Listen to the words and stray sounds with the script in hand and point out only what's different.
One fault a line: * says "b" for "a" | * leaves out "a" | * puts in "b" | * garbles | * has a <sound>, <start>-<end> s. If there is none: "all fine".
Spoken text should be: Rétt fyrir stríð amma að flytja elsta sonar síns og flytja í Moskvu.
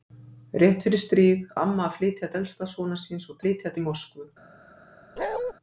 * has a bark, 5.2-5.5 s